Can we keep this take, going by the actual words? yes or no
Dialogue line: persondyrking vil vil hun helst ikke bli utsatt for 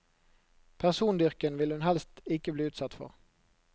no